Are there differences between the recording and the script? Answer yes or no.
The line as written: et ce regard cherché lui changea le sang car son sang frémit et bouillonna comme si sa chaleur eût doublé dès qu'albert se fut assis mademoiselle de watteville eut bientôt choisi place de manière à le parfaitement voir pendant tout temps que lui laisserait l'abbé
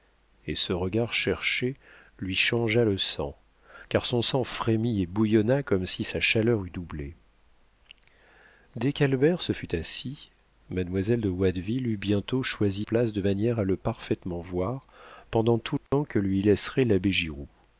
no